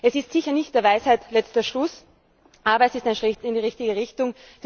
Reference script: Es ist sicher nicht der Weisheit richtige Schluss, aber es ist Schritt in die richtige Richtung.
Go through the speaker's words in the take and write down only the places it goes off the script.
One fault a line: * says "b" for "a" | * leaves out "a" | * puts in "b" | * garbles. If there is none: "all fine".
* says "letzter" for "richtige"
* puts in "ein"